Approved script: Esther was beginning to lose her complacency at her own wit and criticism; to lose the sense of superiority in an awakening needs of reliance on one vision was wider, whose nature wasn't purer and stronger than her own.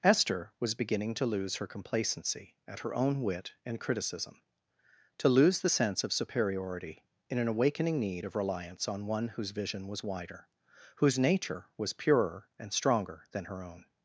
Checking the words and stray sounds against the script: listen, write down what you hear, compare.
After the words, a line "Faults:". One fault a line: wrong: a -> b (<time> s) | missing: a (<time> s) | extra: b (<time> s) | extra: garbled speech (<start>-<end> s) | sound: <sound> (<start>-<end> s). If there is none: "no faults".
Esther was beginning to lose her complacency at her own wit and criticism; to lose the sense of superiority in an awakening need of reliance on one whose vision was wider, whose nature was purer and stronger than her own.
Faults:
wrong: needs -> need (8.0 s)
extra: whose (9.3 s)
wrong: wasn't -> was (11.8 s)